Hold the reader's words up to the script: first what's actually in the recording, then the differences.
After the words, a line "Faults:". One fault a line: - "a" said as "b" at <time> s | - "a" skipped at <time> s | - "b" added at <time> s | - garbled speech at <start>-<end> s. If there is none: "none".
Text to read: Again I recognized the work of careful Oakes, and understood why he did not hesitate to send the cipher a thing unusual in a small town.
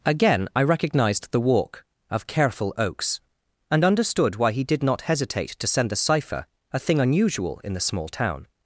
Again I recognized the walk of careful Oakes, and understood why he did not hesitate to send the cipher a thing unusual in the small town.
Faults:
- "work" said as "walk" at 1.4 s
- "a" said as "the" at 7.7 s